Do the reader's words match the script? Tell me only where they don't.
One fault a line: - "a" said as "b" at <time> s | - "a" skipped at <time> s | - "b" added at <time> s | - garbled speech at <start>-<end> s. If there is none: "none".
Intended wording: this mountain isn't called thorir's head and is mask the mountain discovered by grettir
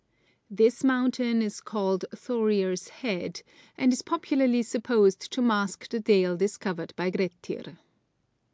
- "isn't" said as "is" at 1.4 s
- "popularly supposed to" added at 4.0 s
- "mountain" said as "dale" at 6.0 s